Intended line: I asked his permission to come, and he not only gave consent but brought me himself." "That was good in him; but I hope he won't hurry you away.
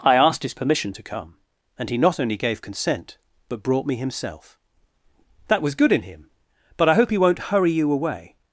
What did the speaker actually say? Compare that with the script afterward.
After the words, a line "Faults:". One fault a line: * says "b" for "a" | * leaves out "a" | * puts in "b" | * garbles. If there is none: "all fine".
I asked his permission to come, and he not only gave consent but brought me himself." "That was good in him; but I hope he won't hurry you away.
Faults:
all fine